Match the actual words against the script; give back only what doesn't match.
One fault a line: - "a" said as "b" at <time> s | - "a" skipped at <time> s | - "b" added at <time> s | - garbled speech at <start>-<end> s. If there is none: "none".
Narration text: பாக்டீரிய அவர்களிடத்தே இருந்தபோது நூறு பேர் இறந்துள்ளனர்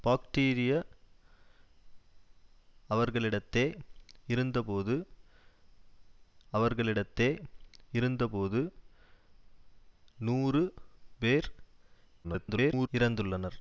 - "அவர்களிடத்தே இருந்தபோது" added at 6.5 s
- garbled speech at 12.2-12.9 s